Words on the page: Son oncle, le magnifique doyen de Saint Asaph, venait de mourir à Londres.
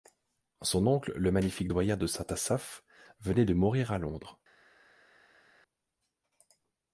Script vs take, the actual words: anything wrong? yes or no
no